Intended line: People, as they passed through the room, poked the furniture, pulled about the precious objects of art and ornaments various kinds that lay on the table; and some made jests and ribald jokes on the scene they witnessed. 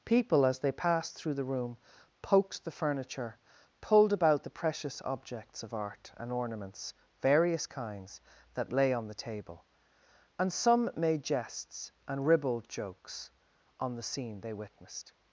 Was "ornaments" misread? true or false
false